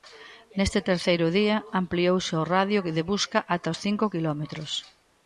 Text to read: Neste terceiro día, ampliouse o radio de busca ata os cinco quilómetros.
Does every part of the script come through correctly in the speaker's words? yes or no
yes